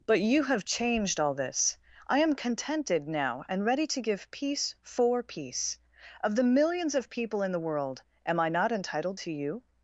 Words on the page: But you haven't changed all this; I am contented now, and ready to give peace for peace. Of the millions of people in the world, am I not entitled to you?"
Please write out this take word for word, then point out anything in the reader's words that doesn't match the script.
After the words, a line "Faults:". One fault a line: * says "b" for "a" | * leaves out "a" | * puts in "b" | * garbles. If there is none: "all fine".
But you have changed all this; I am contented now, and ready to give peace for peace. Of the millions of people in the world, am I not entitled to you?"
Faults:
* says "have" for "haven't"